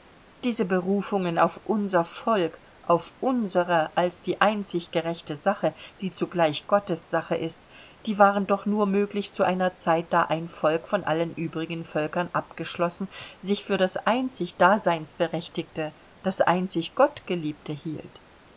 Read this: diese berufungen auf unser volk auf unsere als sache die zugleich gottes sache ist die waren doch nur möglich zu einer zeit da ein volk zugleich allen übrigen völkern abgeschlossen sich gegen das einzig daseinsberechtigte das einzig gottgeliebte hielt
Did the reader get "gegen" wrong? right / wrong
wrong